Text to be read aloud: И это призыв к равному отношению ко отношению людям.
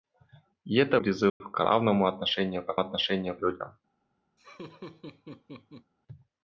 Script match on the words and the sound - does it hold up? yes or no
no